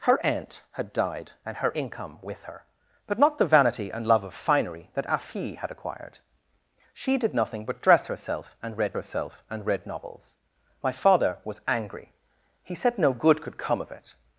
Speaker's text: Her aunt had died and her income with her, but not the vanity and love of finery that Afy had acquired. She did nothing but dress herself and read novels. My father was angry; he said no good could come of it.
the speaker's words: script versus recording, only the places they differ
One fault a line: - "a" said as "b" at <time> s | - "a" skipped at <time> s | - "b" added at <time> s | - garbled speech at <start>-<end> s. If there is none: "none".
- "herself and read" added at 8.9 s